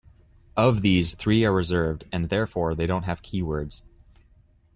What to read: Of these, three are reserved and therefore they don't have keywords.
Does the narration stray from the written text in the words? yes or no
no